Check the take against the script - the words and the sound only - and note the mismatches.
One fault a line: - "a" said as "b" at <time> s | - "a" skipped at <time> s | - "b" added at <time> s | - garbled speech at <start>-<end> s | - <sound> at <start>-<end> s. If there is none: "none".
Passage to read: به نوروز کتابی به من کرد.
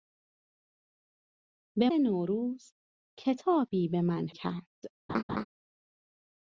- laugh at 5.1-5.4 s